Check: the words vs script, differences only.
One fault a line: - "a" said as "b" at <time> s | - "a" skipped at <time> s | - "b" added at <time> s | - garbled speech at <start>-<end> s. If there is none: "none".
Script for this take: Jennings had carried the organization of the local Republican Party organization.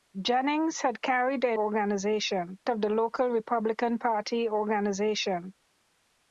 none